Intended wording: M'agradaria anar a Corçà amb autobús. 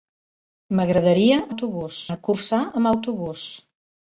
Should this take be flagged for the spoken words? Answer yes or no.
yes